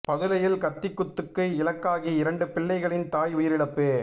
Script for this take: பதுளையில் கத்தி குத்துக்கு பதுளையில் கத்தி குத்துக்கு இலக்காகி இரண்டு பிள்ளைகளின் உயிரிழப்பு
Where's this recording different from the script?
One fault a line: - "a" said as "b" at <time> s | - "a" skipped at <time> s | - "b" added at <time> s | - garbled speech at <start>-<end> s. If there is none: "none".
- "பதுளையில் கத்தி குத்துக்கு" skipped at 1.4 s
- "தாய்" added at 3.1 s